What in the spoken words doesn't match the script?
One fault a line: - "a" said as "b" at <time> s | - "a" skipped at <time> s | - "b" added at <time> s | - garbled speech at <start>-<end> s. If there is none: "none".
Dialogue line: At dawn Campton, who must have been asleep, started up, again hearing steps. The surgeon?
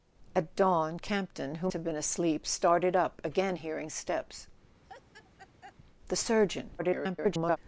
- "must" skipped at 1.7 s
- garbled speech at 6.8-7.6 s